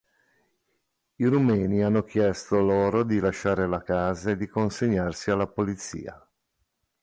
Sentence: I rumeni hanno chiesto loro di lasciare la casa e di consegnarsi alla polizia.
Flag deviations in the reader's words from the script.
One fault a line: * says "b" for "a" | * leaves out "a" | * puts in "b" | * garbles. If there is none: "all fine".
all fine